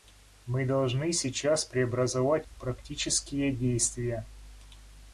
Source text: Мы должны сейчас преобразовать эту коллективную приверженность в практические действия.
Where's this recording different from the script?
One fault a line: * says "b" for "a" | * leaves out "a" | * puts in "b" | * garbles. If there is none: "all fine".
* leaves out "эту коллективную приверженность"